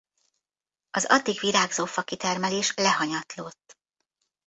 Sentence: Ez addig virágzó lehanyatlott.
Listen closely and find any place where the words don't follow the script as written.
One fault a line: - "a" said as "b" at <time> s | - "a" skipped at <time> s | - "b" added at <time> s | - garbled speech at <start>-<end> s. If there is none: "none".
- "Ez" said as "Az" at 0.9 s
- "fakitermelés" added at 1.9 s